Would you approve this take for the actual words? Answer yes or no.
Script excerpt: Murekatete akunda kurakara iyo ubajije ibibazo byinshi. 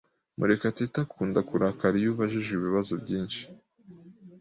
yes